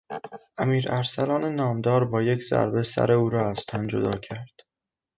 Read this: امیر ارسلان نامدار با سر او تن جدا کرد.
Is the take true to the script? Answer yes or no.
no